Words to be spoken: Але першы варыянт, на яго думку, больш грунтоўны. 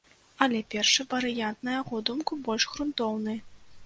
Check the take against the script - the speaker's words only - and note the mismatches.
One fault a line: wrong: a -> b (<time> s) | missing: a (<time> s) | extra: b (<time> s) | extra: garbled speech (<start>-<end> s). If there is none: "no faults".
no faults